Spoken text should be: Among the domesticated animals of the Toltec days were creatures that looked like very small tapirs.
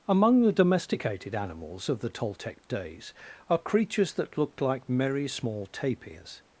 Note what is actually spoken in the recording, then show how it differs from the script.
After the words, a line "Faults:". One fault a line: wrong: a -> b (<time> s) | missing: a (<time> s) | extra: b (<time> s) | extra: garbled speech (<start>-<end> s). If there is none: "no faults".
Among the domesticated animals of the Toltec days are creatures that looked like merry small tapirs.
Faults:
wrong: were -> are (3.5 s)
wrong: very -> merry (4.9 s)